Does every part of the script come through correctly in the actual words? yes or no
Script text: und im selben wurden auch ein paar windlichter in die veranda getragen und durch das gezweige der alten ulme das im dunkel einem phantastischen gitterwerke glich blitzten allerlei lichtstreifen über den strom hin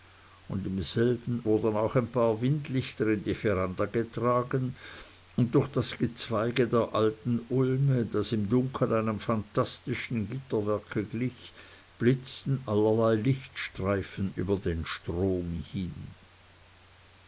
yes